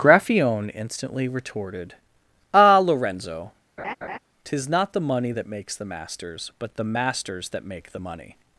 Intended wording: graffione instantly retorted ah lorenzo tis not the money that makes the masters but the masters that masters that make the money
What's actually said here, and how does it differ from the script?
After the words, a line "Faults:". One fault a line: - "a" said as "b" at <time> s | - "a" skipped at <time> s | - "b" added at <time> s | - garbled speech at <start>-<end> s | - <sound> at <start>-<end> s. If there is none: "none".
graffione instantly retorted ah lorenzo tis not the money that makes the masters but the masters that make the money
Faults:
- laugh at 3.8-4.2 s
- "masters that" skipped at 7.7 s